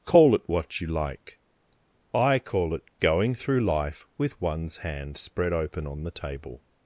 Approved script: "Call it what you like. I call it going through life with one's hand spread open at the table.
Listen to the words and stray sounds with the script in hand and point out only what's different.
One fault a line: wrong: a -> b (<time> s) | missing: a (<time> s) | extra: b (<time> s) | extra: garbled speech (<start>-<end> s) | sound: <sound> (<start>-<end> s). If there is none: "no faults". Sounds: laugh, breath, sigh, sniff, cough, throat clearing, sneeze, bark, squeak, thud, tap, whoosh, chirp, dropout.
wrong: at -> on (5.8 s)